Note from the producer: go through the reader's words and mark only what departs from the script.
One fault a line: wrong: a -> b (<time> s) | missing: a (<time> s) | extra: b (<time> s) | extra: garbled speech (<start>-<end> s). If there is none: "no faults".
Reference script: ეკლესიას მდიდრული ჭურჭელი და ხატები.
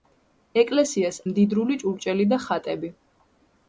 no faults